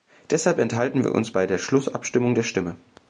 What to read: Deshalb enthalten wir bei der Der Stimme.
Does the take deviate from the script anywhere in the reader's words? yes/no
yes